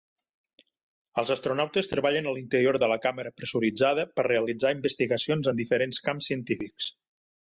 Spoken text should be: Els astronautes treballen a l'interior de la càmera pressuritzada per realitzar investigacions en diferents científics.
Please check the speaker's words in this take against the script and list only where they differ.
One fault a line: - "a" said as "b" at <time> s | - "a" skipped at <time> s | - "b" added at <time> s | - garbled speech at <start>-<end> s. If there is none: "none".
- "camps" added at 6.1 s